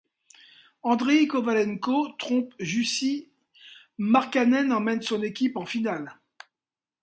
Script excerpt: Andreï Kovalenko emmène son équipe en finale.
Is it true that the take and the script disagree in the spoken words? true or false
true